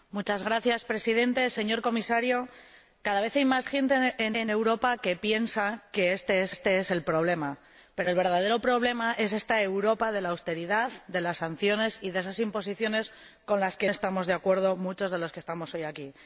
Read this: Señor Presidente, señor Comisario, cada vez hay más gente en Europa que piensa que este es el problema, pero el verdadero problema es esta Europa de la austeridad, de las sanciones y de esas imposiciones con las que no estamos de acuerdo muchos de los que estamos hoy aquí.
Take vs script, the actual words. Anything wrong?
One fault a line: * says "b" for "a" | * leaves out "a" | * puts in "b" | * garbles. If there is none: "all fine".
* puts in "en"
* puts in "este es"
* leaves out "no"